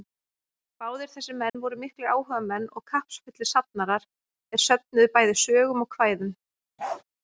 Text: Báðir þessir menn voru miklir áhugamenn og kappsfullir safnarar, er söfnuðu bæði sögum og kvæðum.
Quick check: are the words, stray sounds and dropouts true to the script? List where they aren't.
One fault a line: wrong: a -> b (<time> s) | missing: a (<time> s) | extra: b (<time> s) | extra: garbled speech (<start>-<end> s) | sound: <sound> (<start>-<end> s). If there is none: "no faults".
sound: dropout (1.5-1.5 s)
sound: bark (6.8-7.0 s)